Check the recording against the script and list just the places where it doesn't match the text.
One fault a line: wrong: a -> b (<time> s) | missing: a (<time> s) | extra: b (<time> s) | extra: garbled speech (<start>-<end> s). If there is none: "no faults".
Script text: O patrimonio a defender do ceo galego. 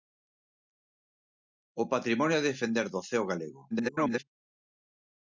extra: garbled speech (3.7-4.2 s)